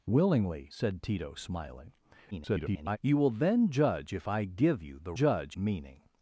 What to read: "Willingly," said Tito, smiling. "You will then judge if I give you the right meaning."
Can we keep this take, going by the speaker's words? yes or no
no